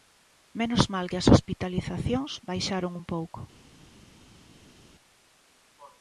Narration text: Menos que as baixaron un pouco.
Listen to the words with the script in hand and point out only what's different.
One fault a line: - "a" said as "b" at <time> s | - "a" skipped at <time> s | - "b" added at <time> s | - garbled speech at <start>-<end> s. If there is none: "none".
- "mal" added at 0.9 s
- "hospitalizacións" added at 1.3 s